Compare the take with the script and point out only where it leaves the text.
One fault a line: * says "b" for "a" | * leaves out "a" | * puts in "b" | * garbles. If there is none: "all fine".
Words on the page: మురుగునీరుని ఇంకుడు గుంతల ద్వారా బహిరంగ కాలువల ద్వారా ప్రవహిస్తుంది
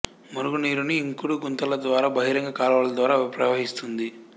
all fine